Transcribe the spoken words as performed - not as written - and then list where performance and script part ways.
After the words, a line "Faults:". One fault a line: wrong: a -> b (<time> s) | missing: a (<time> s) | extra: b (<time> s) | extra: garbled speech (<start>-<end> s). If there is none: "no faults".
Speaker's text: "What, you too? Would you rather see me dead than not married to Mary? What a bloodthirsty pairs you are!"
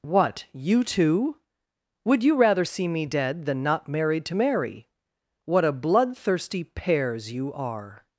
"What, you too? Would you rather see me dead than not married to Mary? What a bloodthirsty pairs you are!"
Faults:
no faults